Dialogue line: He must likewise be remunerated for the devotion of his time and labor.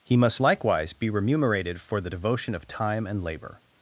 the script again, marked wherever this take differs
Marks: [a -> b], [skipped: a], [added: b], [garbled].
He must likewise be remunerated for the devotion of [skipped: his] time and labor.